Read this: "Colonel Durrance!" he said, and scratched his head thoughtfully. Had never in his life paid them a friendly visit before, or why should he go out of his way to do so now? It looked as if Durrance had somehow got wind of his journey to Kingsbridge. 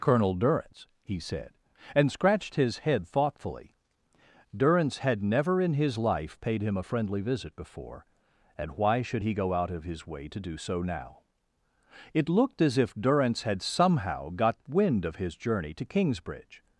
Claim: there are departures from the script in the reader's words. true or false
true